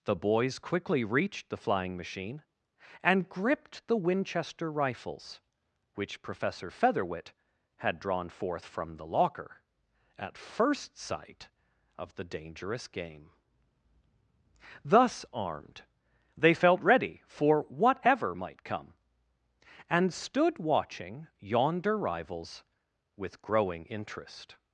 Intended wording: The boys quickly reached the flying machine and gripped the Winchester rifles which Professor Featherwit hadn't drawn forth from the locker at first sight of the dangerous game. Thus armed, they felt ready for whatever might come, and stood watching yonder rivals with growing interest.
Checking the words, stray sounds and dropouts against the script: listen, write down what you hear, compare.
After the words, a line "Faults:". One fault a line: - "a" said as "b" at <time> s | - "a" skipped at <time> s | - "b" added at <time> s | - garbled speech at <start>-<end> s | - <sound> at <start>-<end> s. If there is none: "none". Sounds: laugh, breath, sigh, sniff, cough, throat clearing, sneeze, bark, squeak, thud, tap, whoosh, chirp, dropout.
The boys quickly reached the flying machine and gripped the Winchester rifles which Professor Featherwit had drawn forth from the locker at first sight of the dangerous game. Thus armed, they felt ready for whatever might come, and stood watching yonder rivals with growing interest.
Faults:
- "hadn't" said as "had" at 7.8 s